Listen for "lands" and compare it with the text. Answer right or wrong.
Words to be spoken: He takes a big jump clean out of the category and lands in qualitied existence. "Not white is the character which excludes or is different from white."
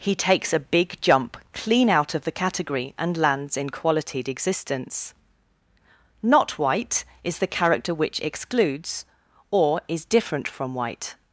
right